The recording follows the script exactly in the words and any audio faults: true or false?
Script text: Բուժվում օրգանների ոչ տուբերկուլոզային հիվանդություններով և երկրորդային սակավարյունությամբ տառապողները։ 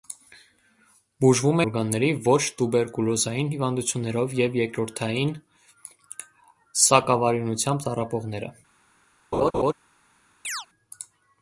false